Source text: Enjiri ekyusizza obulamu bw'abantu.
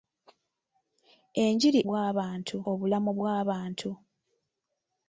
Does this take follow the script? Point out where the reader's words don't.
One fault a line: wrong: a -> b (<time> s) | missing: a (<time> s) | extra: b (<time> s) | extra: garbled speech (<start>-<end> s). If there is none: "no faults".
wrong: ekyusizza -> bw'abantu (1.9 s)